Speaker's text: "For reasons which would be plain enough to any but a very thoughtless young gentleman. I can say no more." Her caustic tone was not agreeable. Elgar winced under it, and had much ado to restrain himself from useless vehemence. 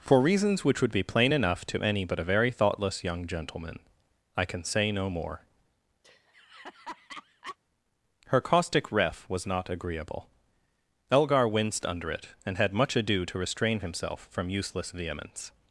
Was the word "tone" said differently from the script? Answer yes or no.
yes